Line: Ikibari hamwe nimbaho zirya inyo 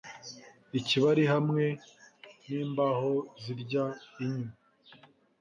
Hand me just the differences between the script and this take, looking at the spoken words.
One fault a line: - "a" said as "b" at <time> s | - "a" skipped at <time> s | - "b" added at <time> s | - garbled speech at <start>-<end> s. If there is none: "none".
none